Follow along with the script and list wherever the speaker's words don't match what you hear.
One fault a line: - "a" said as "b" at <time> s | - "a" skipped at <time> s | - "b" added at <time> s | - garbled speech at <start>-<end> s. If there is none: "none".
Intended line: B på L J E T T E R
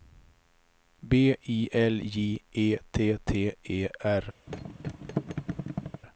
- "på" said as "I" at 1.5 s